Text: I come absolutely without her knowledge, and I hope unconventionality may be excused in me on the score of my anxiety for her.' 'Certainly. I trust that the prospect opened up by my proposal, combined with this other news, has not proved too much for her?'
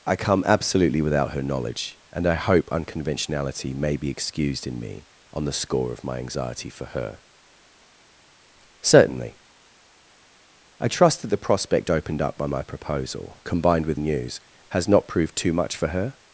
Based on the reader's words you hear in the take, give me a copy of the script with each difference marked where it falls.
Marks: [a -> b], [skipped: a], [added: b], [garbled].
I come absolutely without her knowledge, and I hope unconventionality may be excused in me on the score of my anxiety for her.' 'Certainly. I trust that the prospect opened up by my proposal, combined with [skipped: this other] news, has not proved too much for her?'